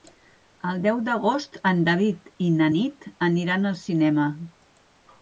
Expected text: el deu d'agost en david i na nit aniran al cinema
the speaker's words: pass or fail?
pass